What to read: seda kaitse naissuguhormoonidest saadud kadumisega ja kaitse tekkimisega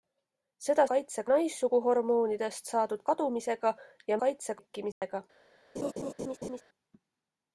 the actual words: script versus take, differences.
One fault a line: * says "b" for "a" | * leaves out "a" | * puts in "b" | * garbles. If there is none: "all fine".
all fine